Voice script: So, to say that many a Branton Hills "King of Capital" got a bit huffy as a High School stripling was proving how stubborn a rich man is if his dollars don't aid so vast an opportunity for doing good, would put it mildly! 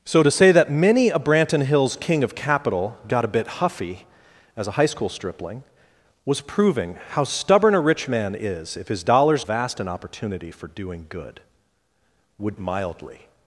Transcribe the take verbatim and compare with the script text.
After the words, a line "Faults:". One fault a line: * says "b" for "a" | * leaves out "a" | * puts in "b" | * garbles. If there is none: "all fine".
So, to say that many a Branton Hills "King of Capital" got a bit huffy as a High School stripling was proving how stubborn a rich man is if his dollars vast an opportunity for doing good, would mildly!
Faults:
* leaves out "don't aid so"
* leaves out "put it"